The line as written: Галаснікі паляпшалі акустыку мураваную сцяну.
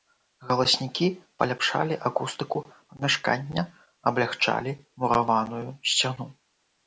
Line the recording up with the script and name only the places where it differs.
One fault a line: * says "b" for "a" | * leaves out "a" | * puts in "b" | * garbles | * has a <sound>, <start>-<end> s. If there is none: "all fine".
* puts in "памяшкання аблягчалі"